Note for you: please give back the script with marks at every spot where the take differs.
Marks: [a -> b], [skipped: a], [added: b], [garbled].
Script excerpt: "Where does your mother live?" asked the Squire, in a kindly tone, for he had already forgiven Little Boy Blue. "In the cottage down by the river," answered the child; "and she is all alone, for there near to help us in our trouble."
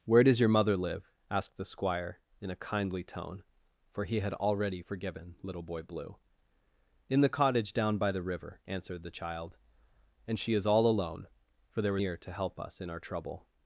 "Where does your mother live?" asked the Squire, in a kindly tone, for he had already forgiven Little Boy Blue. "In the cottage down by the river," answered the child; "and she is all alone, for there near to help us in our trouble."